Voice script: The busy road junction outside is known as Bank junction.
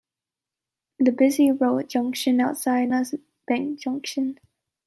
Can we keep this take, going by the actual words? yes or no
no